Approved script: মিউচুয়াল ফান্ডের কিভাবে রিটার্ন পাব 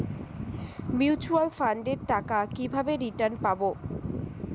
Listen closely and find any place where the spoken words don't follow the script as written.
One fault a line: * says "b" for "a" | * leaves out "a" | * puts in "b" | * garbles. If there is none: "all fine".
* puts in "টাকা"